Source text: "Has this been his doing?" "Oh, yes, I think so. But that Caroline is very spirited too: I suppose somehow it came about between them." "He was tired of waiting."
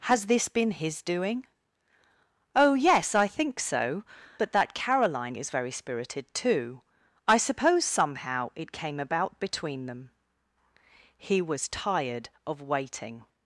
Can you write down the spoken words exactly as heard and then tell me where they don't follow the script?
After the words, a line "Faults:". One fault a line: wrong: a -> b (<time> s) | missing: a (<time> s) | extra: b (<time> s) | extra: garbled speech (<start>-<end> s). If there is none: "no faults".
"Has this been his doing?" "Oh, yes, I think so. But that Caroline is very spirited too: I suppose somehow it came about between them." "He was tired of waiting."
Faults:
no faults